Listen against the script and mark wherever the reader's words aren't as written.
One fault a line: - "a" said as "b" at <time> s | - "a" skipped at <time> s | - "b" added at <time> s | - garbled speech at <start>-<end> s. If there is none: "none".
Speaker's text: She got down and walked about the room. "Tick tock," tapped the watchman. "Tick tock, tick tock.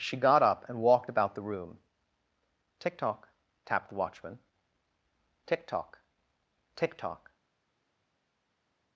- "down" said as "up" at 0.4 s